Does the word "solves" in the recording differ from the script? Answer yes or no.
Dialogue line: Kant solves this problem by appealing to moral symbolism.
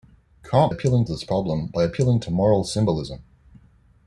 yes